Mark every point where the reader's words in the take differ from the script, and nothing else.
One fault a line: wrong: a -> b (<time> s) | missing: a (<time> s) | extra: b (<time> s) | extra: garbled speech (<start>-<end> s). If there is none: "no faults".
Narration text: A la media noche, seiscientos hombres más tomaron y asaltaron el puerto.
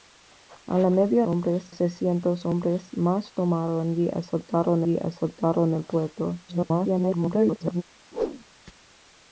wrong: noche -> hombres (1.3 s)
extra: y asaltaron (4.9 s)
extra: garbled speech (6.5-7.8 s)